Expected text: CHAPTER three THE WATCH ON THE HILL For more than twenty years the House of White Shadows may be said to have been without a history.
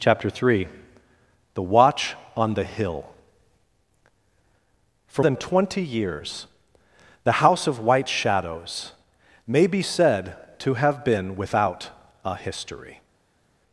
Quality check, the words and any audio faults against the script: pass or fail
fail